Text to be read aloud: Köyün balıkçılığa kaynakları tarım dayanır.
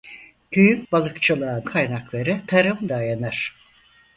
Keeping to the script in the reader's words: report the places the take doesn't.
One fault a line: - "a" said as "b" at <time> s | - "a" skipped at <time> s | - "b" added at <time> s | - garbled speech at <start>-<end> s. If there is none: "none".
none